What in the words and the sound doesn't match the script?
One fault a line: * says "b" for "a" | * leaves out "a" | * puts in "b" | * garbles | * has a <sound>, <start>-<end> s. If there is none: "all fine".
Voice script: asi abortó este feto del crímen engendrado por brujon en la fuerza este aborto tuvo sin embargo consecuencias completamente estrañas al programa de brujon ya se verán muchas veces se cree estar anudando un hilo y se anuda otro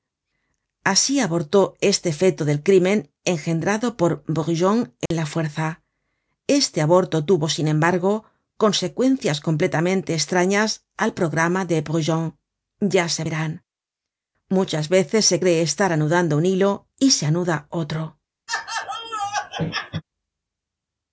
* has a dropout, 5.1-5.1 s
* has a laugh, 18.5-20.0 s